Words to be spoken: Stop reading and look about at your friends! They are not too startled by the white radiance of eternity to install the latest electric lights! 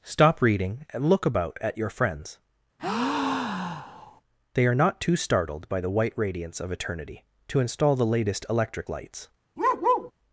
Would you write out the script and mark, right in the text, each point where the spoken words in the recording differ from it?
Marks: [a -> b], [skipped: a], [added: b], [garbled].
Stop reading and look about at your friends! They are not too startled by the white radiance of eternity to install the latest electric lights!